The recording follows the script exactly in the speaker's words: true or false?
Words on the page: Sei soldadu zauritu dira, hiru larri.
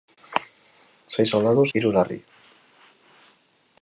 false